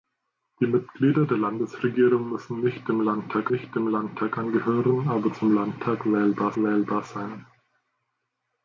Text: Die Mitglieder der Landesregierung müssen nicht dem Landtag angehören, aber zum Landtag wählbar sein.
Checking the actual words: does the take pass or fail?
fail